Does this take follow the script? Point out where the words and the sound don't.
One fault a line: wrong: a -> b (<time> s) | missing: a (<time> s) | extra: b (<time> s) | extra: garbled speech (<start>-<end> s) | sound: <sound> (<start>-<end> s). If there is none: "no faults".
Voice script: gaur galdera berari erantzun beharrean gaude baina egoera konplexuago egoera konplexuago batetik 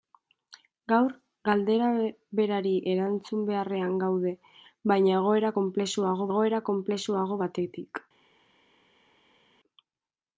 no faults